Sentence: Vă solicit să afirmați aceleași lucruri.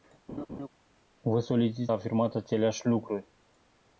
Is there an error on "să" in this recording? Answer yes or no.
yes